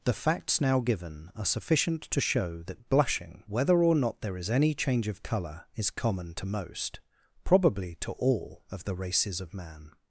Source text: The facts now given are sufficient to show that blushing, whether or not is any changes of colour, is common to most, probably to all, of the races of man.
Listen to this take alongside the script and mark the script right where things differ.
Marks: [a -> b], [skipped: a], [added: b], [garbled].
The facts now given are sufficient to show that blushing, whether or not [added: there] is any [changes -> change] of colour, is common to most, probably to all, of the races of man.